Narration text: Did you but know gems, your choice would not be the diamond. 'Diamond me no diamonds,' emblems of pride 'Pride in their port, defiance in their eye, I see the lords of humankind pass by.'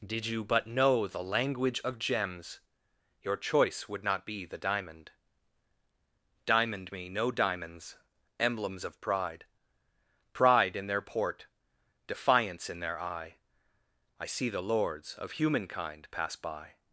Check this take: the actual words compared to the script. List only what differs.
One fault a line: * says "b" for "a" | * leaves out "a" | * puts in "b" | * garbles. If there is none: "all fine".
* puts in "the language of"